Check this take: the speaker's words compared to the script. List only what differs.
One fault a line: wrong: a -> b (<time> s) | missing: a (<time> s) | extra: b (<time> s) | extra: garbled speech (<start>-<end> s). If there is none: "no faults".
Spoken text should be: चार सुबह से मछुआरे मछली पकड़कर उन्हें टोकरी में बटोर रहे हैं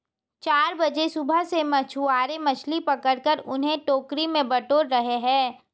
extra: बजे (0.8 s)